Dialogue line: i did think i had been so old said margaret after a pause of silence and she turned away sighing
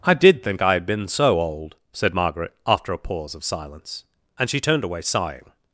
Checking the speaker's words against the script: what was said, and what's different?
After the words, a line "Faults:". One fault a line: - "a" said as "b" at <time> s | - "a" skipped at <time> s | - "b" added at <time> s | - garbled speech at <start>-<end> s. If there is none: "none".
i did think i had been so old said margaret after a pause of silence and she turned away sighing
Faults:
none